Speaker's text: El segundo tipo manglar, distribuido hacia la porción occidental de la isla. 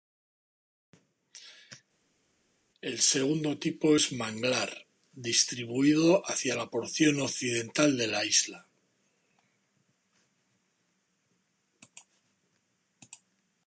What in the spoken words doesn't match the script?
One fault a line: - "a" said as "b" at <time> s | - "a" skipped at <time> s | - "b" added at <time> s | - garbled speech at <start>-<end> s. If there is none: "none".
- "es" added at 3.9 s